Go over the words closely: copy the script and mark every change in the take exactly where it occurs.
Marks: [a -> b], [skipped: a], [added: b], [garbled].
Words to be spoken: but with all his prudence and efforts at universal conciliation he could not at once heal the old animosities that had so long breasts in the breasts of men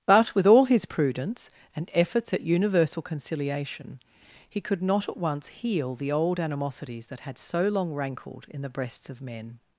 but with all his prudence and efforts at universal conciliation he could not at once heal the old animosities that had so long [breasts -> rankled] in the breasts of men